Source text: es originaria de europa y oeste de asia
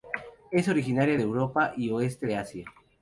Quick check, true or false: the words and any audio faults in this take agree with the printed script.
true